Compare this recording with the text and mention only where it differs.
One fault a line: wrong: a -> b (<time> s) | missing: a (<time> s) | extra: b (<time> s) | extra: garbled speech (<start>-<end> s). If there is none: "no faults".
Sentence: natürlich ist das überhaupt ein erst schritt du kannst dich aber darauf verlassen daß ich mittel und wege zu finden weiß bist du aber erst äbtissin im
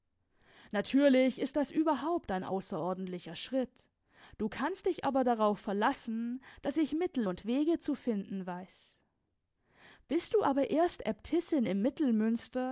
wrong: erst -> außerordentlicher (2.4 s)